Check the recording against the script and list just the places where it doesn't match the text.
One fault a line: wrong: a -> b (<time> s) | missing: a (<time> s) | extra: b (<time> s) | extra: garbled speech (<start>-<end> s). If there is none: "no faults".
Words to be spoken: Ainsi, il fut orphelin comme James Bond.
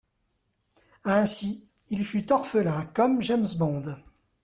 no faults